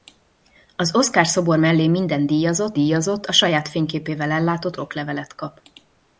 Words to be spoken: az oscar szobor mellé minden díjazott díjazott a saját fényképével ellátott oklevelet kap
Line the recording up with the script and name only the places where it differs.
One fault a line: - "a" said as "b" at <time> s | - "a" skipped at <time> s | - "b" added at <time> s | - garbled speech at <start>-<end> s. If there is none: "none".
none